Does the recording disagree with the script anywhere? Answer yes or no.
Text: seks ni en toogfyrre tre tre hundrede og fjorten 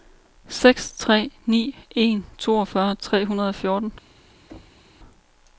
yes